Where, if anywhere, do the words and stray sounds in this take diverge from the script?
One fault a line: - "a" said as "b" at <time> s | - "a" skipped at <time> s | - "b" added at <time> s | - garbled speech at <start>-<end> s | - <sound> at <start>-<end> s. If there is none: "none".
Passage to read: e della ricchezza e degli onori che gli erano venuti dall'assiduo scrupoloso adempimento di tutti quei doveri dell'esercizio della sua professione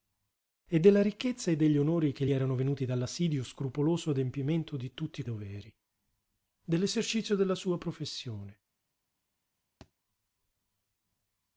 - "gli" skipped at 2.2 s
- "quei" skipped at 5.2 s
- thud at 9.8-9.9 s